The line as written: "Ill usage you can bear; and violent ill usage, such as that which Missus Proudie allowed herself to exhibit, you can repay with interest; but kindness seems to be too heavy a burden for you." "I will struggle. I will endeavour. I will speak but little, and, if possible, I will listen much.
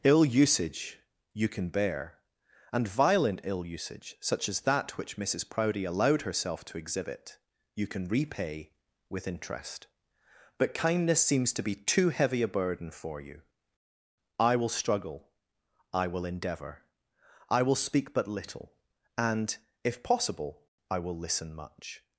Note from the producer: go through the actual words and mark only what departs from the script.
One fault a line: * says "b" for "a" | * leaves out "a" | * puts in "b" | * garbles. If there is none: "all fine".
all fine